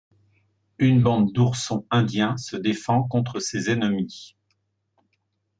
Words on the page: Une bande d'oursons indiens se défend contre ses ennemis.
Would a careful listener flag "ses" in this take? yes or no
no